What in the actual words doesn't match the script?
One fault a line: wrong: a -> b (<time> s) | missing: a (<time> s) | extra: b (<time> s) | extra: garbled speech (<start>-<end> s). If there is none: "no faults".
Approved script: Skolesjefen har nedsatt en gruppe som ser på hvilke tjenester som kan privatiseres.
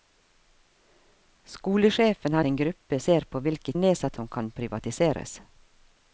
missing: nedsatt (2.4 s)
missing: som (3.0 s)
wrong: tjenester -> nedsatt (3.7 s)